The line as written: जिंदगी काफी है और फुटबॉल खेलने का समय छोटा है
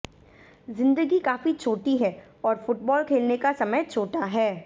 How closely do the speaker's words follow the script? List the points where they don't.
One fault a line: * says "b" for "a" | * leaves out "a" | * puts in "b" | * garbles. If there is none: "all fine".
* puts in "छोटी"